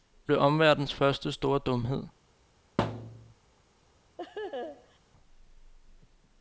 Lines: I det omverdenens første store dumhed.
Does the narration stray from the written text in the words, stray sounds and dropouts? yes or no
yes